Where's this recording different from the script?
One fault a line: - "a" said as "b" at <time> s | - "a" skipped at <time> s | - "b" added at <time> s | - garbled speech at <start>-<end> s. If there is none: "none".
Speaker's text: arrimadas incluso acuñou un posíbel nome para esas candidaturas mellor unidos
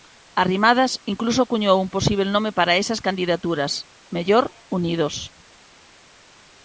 none